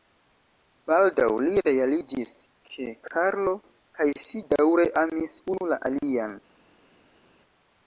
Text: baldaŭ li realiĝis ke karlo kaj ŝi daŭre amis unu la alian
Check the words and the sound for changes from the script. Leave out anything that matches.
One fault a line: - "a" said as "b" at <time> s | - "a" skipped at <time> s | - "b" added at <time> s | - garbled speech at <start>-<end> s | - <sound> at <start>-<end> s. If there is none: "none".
none